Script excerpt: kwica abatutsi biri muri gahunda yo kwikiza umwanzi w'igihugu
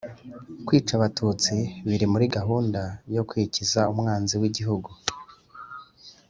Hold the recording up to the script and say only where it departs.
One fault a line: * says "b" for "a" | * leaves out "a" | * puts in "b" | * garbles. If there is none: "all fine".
all fine